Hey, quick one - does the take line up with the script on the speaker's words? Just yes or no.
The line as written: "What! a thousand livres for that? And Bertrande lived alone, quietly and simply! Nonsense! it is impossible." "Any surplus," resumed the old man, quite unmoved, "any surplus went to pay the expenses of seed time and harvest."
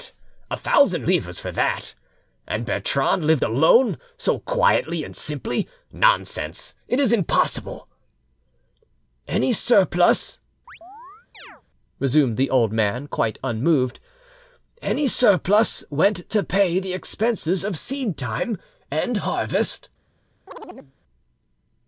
no